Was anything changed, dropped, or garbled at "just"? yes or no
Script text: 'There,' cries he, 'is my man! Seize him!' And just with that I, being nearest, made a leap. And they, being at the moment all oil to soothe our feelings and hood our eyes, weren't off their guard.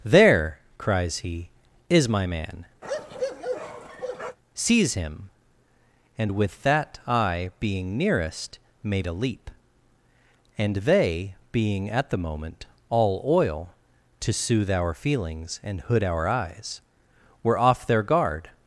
yes